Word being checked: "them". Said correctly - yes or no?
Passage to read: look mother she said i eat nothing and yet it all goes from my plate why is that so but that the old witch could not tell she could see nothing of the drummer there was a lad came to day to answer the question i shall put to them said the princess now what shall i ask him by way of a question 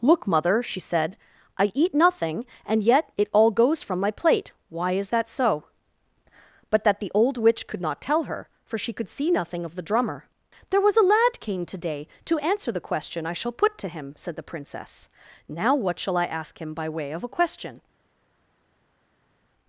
no